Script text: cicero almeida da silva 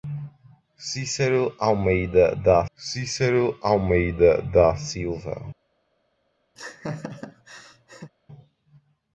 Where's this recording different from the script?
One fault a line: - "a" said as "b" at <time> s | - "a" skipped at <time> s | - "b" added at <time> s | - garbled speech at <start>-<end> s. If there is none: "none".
- "cicero almeida da" added at 2.8 s